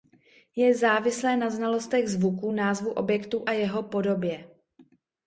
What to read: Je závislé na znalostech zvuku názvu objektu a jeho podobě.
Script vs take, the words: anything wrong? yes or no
no